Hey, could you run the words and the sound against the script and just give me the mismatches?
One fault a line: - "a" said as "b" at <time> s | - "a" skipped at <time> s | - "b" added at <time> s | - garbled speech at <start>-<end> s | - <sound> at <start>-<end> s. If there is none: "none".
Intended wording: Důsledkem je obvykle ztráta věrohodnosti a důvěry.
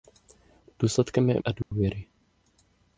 - "obvykle ztráta věrohodnosti" skipped at 1.4 s
- dropout at 1.6-1.7 s